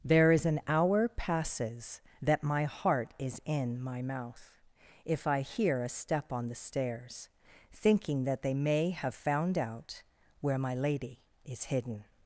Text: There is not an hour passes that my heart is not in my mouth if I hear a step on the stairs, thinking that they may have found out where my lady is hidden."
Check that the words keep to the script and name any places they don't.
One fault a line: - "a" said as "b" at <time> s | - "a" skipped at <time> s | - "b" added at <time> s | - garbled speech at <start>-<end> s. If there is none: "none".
- "not" skipped at 0.5 s
- "not" skipped at 3.4 s